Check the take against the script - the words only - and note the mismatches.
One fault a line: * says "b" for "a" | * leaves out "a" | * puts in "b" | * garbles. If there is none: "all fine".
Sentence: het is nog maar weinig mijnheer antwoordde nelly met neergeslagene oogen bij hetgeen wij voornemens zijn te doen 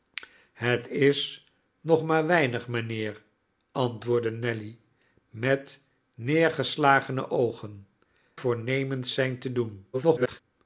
* leaves out "bij hetgeen wij"
* garbles